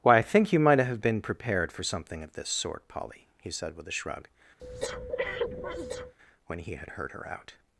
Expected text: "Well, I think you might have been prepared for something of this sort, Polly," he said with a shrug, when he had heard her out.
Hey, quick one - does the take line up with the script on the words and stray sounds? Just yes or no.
no